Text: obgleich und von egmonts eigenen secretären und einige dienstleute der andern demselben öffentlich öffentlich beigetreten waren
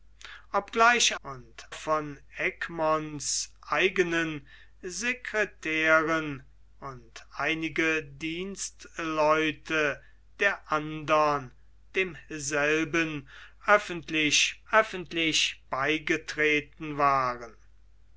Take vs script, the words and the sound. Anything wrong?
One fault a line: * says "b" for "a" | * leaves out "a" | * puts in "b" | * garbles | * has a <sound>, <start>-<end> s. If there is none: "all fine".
all fine